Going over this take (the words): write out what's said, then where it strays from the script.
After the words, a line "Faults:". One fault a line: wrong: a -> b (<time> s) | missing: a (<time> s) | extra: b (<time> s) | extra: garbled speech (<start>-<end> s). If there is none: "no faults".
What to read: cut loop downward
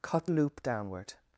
cut loop downward
Faults:
no faults